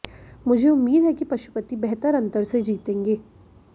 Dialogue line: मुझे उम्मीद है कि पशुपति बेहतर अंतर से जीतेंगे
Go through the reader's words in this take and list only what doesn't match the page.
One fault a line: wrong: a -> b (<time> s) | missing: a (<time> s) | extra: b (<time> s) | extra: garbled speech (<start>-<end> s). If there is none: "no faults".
no faults